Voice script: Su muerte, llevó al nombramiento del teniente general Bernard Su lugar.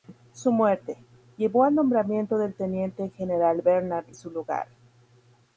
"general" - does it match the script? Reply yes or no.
yes